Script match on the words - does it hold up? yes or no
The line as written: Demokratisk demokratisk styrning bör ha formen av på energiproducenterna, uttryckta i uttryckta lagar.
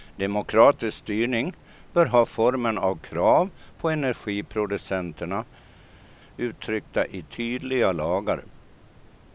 no